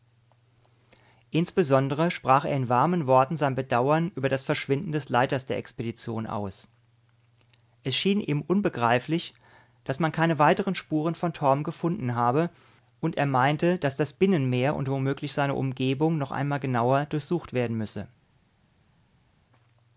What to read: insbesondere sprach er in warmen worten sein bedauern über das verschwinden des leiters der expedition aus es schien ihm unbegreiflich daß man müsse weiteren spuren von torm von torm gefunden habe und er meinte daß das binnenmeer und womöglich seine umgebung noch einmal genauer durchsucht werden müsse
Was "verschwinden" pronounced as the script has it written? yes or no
yes